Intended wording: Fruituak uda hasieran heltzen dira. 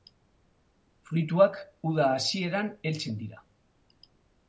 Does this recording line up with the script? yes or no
yes